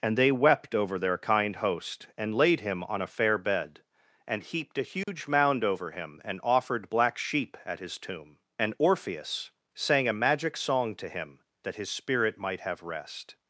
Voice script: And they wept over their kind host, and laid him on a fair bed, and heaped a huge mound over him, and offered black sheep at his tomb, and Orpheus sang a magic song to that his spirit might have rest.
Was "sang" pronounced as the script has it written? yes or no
yes